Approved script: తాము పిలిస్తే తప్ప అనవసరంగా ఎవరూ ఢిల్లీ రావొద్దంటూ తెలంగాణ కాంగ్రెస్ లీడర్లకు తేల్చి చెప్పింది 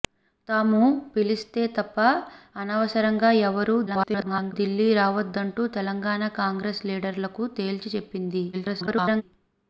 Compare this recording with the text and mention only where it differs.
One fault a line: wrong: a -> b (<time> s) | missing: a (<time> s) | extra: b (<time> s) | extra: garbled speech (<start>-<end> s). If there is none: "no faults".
extra: garbled speech (3.9-4.5 s)
extra: garbled speech (8.5-9.2 s)